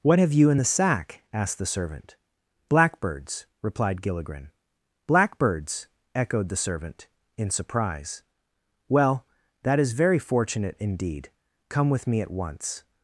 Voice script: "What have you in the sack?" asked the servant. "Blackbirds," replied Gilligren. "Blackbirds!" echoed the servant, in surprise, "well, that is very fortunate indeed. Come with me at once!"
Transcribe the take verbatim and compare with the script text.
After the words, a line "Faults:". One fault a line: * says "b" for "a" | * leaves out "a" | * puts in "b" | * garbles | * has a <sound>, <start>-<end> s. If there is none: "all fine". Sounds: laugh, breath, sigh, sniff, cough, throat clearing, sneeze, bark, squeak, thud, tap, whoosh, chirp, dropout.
"What have you in the sack?" asked the servant. "Blackbirds," replied Gilligren. "Blackbirds!" echoed the servant, in surprise, "well, that is very fortunate indeed. Come with me at once!"
Faults:
all fine